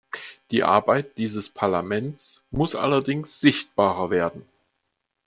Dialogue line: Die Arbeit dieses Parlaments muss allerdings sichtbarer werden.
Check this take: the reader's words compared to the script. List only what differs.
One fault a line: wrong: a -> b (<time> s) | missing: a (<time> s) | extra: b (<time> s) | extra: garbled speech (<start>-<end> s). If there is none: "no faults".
no faults